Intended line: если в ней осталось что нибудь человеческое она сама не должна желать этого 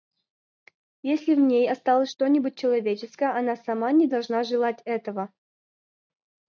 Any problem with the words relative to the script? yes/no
no